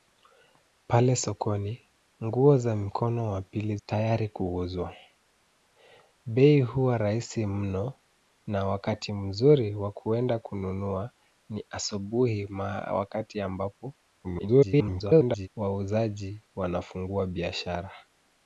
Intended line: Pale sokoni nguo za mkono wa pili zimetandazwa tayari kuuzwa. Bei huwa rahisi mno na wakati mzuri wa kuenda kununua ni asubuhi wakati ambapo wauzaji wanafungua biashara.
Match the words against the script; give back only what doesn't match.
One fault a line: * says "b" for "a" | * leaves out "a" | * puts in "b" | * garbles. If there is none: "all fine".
* leaves out "zimetandazwa"
* garbles